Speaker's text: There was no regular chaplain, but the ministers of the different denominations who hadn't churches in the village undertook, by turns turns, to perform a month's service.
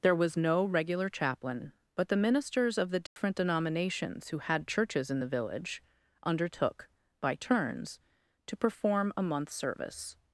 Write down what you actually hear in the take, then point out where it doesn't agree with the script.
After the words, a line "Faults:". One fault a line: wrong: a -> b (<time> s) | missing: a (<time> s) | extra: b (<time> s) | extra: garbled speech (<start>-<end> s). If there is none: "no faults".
There was no regular chaplain, but the ministers of the different denominations who had churches in the village undertook, by turns, to perform a month's service.
Faults:
wrong: hadn't -> had (4.4 s)
missing: turns (8.0 s)